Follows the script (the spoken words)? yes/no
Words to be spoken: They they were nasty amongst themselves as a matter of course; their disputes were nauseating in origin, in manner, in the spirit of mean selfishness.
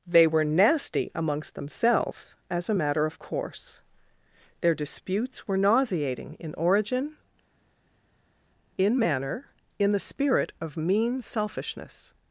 no